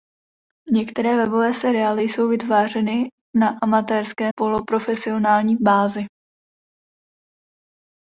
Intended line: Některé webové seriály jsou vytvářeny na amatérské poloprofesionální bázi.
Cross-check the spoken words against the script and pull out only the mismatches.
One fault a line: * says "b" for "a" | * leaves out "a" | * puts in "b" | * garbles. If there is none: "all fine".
all fine